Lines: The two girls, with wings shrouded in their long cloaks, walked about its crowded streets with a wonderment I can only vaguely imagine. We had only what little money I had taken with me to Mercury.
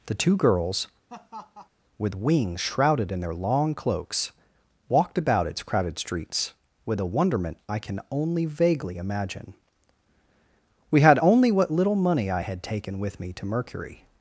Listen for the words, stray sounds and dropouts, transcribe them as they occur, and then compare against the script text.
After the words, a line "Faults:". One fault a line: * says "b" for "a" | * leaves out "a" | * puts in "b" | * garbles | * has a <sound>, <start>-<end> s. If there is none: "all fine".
The two girls, with wings shrouded in their long cloaks, walked about its crowded streets with a wonderment I can only vaguely imagine. We had only what little money I had taken with me to Mercury.
Faults:
* has a laugh, 1.1-1.7 s